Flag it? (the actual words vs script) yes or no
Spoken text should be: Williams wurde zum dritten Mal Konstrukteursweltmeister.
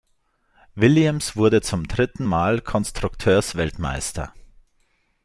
no